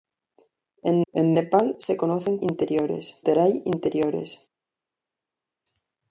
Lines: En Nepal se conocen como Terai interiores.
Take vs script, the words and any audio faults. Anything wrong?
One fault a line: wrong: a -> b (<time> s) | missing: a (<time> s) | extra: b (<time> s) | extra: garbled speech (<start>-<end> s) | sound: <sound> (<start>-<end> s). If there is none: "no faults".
extra: en (1.1 s)
wrong: como -> interiores (2.4 s)